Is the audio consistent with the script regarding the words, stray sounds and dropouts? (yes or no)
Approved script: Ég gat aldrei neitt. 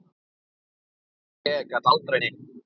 yes